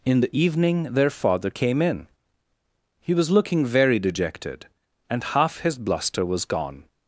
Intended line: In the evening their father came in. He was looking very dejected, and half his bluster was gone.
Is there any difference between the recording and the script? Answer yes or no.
no